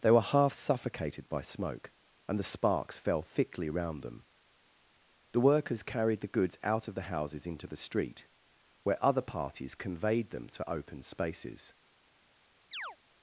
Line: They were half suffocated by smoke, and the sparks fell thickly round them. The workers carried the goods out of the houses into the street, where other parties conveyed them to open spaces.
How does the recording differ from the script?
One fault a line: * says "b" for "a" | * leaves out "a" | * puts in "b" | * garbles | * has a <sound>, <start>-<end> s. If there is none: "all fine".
* has a chirp, 12.7-13.0 s